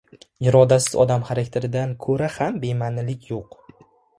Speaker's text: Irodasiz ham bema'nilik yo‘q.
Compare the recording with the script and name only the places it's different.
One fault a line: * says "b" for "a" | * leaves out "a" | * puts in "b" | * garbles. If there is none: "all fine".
* puts in "odam xarakteridan ko‘ra"